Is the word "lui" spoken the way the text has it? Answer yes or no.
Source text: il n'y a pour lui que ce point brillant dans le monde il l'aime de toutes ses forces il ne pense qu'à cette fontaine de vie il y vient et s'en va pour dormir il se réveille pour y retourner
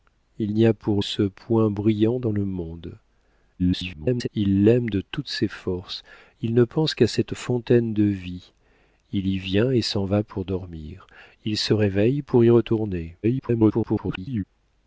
no